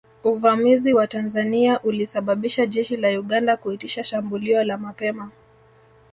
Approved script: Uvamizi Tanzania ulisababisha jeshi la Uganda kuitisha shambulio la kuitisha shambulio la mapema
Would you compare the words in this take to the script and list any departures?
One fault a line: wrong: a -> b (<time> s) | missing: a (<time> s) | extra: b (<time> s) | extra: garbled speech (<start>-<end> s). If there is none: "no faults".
extra: wa (0.9 s)
missing: kuitisha shambulio la (4.8 s)